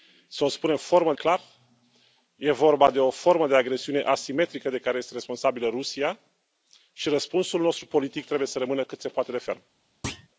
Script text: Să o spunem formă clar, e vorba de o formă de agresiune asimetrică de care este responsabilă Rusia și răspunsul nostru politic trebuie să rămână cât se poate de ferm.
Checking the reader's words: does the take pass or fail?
pass